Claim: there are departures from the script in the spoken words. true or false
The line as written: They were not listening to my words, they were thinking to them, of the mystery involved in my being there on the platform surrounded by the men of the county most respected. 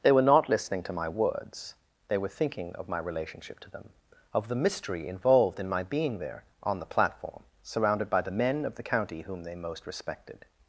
true